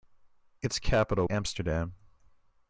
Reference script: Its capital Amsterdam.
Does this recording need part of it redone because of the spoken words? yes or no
no